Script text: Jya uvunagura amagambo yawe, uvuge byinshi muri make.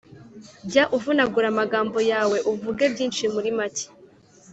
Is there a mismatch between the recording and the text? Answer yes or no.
no